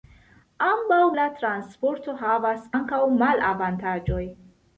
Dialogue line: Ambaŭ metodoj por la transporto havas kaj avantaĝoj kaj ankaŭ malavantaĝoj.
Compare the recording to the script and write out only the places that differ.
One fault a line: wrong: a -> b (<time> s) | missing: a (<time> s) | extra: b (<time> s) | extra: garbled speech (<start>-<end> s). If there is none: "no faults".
missing: metodoj por (1.0 s)
missing: kaj avantaĝoj kaj (2.7 s)